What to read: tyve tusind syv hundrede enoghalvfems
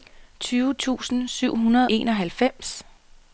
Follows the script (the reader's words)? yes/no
yes